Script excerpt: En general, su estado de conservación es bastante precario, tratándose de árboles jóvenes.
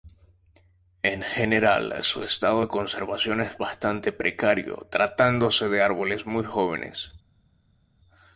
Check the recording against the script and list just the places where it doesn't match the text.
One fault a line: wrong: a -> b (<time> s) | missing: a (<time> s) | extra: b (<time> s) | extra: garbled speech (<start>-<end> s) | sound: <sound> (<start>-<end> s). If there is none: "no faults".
extra: muy (6.3 s)